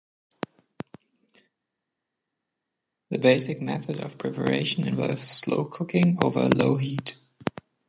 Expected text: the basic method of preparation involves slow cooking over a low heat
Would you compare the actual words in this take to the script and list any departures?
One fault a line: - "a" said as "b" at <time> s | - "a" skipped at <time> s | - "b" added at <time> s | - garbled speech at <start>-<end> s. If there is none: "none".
none